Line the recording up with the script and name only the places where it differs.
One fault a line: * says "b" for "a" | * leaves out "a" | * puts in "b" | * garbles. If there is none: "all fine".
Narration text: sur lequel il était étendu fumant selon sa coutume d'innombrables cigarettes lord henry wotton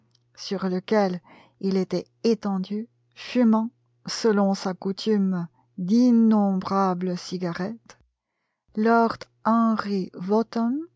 all fine